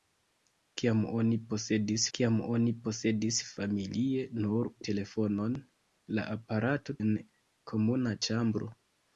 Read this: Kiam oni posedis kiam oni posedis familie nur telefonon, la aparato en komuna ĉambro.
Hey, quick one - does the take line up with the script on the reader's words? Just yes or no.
yes